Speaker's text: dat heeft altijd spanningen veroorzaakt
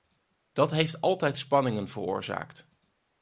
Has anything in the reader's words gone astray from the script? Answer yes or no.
no